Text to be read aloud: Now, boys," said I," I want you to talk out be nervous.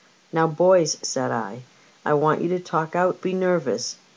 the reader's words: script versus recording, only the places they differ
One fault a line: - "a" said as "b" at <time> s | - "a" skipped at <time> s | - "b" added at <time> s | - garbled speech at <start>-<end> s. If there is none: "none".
none